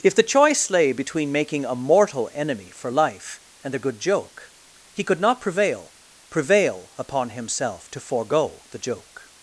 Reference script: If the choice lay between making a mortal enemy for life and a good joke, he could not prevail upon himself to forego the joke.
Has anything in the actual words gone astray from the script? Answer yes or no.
yes